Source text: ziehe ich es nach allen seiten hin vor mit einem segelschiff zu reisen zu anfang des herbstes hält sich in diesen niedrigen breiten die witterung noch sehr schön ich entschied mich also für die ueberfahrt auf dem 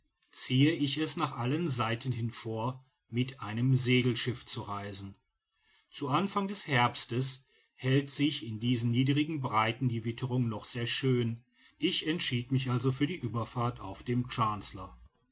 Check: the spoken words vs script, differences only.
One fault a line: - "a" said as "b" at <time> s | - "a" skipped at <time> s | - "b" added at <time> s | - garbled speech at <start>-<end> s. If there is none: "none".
none